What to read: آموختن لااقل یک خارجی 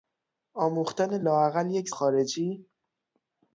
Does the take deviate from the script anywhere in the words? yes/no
no